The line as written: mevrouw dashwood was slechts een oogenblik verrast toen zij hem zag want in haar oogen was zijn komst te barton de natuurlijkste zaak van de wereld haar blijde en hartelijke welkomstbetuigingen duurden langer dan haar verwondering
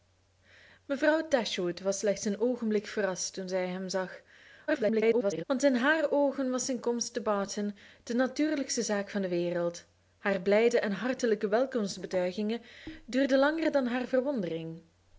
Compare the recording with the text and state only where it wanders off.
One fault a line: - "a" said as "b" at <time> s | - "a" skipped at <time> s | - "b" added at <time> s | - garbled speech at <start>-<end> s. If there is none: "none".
- garbled speech at 4.7-5.4 s